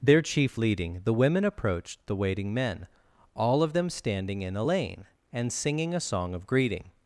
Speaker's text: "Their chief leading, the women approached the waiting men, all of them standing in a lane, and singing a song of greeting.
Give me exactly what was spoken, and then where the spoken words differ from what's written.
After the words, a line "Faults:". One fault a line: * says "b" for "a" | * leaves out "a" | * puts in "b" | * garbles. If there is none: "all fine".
"Their chief leading, the women approached the waiting men, all of them standing in a lane, and singing a song of greeting.
Faults:
all fine